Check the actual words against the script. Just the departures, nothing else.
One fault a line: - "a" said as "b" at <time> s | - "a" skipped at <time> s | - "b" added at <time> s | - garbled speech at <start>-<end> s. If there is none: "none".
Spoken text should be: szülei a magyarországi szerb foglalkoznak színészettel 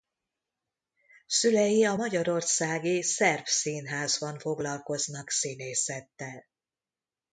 - "színházban" added at 3.4 s